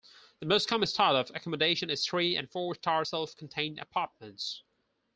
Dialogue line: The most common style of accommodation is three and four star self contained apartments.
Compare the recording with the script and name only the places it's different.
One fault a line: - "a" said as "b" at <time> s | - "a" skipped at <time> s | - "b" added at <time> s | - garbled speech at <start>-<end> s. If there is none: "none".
none